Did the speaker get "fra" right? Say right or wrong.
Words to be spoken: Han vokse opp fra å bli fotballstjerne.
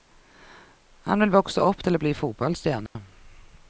wrong